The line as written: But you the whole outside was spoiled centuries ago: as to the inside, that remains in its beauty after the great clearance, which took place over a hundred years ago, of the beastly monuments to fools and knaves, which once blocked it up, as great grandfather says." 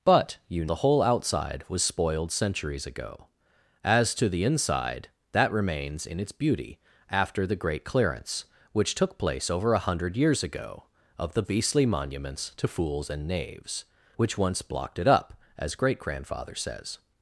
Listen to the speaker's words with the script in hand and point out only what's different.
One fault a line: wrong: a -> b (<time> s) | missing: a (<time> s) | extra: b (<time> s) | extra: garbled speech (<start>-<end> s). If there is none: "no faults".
no faults